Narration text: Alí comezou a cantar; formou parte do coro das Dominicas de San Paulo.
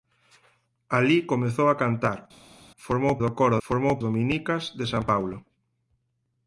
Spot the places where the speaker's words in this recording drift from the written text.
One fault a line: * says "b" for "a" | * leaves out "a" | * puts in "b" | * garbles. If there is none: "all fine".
* leaves out "parte"
* says "formou" for "das"